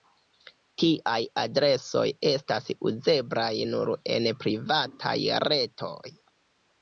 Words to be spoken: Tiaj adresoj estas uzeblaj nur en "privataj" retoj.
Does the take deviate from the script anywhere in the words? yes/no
no